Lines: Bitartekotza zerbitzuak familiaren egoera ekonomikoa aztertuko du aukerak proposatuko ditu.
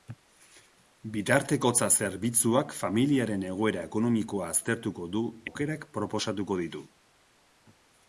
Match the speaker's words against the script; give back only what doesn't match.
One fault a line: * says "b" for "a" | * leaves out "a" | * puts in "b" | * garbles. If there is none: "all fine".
all fine